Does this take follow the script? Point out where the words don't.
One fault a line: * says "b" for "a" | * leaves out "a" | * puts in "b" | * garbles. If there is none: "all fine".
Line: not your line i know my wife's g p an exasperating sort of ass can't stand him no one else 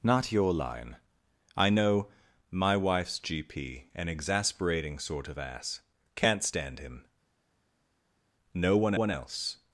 * puts in "one"